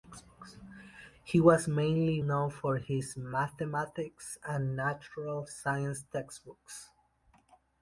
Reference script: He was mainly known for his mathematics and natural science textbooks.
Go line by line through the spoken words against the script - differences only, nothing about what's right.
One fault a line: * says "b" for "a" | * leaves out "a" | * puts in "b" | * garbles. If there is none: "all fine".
all fine